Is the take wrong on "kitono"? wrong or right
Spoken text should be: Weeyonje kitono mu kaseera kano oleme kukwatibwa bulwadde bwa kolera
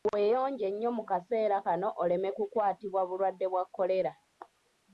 wrong